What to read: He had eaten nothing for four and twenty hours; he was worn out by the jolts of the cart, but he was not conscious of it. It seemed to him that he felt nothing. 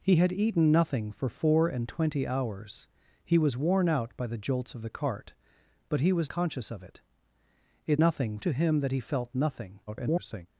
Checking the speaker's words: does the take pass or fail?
fail